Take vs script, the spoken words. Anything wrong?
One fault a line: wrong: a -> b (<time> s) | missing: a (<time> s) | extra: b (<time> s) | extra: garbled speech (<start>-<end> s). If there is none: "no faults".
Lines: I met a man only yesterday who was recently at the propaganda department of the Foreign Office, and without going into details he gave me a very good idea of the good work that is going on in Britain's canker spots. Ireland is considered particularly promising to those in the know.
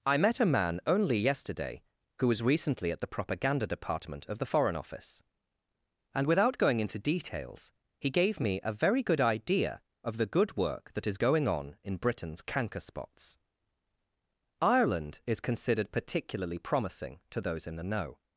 no faults